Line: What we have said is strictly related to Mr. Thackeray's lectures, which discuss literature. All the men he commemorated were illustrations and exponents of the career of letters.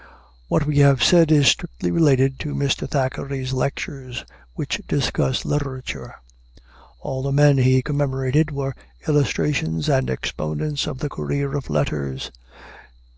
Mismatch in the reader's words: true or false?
false